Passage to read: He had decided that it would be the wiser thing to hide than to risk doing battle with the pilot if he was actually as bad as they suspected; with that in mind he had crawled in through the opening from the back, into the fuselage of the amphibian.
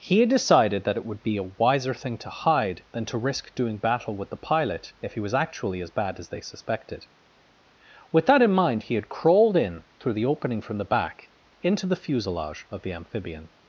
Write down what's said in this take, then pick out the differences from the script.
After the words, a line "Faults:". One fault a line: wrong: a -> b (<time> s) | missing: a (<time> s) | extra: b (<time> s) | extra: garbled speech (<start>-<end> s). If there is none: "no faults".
He had decided that it would be a wiser thing to hide than to risk doing battle with the pilot if he was actually as bad as they suspected; with that in mind he had crawled in through the opening from the back, into the fuselage of the amphibian.
Faults:
wrong: the -> a (1.4 s)